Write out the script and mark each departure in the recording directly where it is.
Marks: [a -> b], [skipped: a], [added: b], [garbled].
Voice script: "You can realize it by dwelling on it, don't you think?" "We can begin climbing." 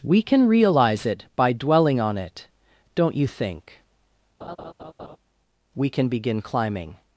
["You -> We] can realize it by dwelling on it, don't you think?" "We can begin climbing."